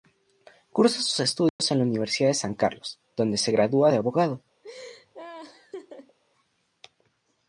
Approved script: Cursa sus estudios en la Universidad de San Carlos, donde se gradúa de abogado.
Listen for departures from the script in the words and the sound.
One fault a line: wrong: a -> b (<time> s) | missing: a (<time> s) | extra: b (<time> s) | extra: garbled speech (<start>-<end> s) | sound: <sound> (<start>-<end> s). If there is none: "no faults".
sound: dropout (1.5-1.6 s)
sound: laugh (4.6-6.2 s)